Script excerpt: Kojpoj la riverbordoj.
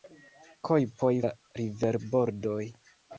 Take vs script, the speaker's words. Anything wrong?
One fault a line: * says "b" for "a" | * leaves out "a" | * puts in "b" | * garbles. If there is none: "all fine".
all fine